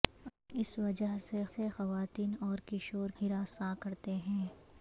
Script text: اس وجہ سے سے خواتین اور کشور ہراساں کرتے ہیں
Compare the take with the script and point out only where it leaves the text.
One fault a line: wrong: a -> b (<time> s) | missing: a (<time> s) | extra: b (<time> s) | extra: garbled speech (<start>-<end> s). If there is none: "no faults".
no faults